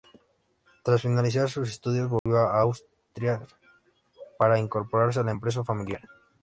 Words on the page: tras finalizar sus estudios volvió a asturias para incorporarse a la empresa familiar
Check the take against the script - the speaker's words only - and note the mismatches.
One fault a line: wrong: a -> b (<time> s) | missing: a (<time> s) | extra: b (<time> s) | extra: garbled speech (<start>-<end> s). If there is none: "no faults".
no faults